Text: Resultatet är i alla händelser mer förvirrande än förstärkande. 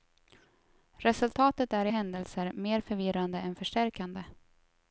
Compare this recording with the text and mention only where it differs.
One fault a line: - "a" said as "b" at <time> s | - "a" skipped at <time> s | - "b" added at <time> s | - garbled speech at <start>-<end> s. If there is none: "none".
- "alla" skipped at 1.9 s